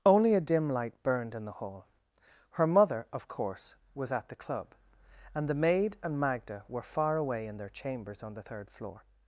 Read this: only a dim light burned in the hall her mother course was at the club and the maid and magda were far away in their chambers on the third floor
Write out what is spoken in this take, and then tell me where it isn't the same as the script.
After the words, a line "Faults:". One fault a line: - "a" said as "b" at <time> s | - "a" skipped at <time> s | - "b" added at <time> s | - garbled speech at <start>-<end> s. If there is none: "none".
only a dim light burned in the hall her mother of course was at the club and the maid and magda were far away in their chambers on the third floor
Faults:
- "of" added at 3.1 s